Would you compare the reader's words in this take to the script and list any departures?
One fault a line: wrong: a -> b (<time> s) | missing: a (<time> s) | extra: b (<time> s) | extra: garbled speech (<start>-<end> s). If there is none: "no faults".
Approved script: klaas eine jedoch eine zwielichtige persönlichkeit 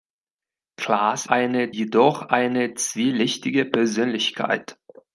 no faults